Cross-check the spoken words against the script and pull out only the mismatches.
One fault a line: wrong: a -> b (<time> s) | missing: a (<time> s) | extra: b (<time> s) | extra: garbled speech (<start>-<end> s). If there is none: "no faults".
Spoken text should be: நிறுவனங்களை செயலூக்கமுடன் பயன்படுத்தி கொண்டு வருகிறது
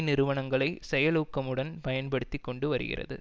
no faults